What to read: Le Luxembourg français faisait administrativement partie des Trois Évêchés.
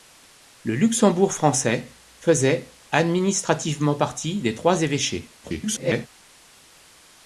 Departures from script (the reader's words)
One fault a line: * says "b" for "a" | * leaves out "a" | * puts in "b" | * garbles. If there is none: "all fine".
* garbles